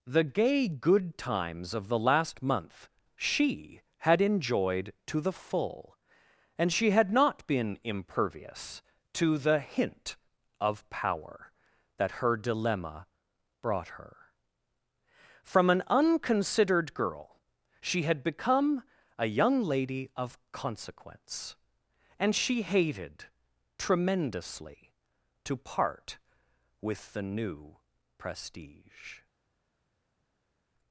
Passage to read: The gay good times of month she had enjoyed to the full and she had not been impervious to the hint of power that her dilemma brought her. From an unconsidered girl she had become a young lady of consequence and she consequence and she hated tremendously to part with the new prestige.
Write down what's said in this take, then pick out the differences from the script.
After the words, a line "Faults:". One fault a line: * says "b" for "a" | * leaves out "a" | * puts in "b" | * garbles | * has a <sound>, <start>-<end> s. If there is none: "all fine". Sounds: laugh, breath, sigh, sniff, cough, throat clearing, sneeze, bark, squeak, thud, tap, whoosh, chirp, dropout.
The gay good times of the last month she had enjoyed to the full and she had not been impervious to the hint of power that her dilemma brought her. From an unconsidered girl she had become a young lady of consequence and she hated tremendously to part with the new prestige.
Faults:
* puts in "the last"
* leaves out "consequence and she"